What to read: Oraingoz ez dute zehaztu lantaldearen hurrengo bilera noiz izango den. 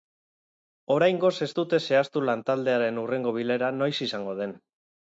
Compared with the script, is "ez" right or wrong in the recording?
right